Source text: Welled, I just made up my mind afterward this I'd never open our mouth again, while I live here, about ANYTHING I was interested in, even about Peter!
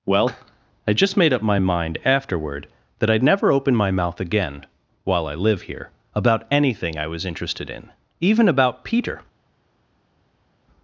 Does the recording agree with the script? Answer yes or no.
no